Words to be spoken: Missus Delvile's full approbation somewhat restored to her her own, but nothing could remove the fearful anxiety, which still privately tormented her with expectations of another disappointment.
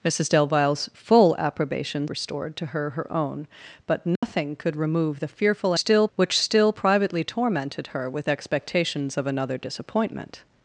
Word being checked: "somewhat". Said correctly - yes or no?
no